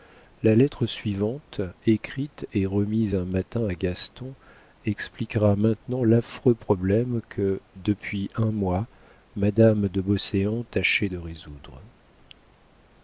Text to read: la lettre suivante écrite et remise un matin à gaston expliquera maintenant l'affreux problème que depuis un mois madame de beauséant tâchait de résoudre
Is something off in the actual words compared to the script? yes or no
no